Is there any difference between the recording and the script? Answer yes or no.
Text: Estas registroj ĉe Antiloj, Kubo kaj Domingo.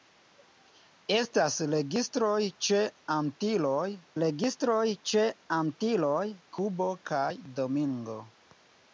yes